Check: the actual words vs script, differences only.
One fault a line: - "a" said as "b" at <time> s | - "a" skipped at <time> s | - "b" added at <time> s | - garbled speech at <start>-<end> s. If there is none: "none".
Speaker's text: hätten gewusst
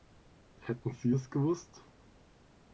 - "sie es" added at 0.9 s